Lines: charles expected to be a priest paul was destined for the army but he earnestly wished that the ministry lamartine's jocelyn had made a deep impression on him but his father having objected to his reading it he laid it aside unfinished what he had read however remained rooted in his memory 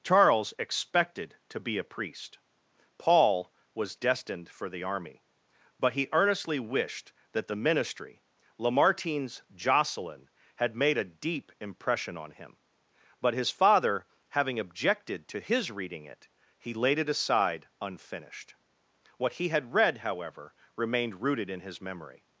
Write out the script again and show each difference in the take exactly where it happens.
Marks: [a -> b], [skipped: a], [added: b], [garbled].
charles expected to be a priest paul was destined for the army but he earnestly wished that the ministry lamartine's jocelyn had made a deep impression on him but his father having objected to his reading it he laid it aside unfinished what he had read however remained rooted in his memory